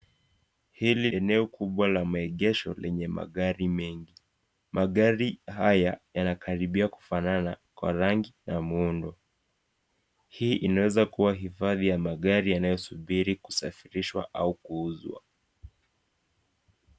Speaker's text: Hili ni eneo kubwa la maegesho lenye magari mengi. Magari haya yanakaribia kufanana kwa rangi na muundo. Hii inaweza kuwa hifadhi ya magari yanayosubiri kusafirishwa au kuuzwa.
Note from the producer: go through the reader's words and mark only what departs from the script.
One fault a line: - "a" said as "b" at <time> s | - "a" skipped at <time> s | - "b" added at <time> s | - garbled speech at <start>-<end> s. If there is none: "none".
- "ni" skipped at 1.1 s